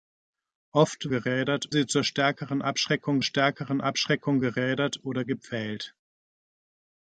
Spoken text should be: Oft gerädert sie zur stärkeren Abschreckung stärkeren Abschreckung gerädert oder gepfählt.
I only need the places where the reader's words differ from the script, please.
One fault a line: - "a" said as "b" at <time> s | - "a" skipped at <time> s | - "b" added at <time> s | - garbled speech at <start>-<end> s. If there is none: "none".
none